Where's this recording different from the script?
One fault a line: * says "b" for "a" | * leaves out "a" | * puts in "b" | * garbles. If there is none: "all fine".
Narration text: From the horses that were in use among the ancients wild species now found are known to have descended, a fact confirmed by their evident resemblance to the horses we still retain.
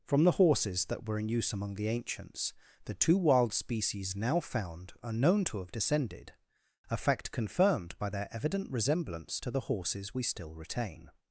* puts in "the two"